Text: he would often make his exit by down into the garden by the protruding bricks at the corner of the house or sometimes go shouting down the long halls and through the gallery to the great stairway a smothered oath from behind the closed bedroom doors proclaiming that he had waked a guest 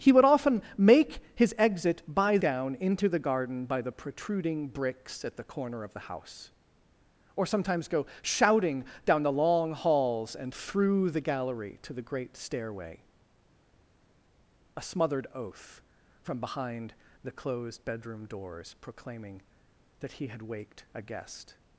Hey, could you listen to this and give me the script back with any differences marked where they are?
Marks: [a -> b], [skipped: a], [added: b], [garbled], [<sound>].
he would often make his exit by down into the garden by the protruding bricks at the corner of the house or sometimes go shouting down the long halls and through the gallery to the great stairway a smothered oath from behind the closed bedroom doors proclaiming that he had waked a guest